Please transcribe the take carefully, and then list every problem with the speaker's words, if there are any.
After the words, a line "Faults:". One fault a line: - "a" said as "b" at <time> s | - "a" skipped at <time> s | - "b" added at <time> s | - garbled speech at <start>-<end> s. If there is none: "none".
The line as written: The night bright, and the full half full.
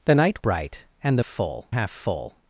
The night bright, and the full half full.
Faults:
none